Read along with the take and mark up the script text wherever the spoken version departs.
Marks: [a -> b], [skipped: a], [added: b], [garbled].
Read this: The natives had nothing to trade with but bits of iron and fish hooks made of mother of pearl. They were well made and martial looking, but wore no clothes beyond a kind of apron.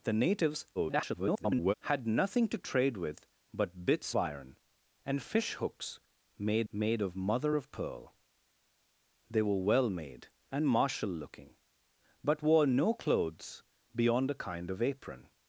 The natives [garbled] had nothing to trade with but bits [skipped: of] iron and fish hooks made [added: made] of mother of pearl. They were well made and martial looking, but wore no clothes beyond a kind of apron.